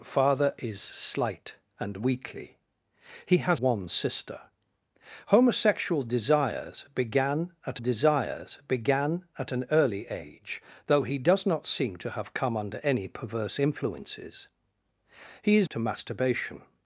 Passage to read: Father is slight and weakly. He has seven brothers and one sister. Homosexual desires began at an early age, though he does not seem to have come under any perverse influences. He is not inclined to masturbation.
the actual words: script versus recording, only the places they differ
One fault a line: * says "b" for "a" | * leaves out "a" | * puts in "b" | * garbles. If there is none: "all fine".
* leaves out "seven brothers and"
* puts in "desires began at"
* leaves out "not inclined"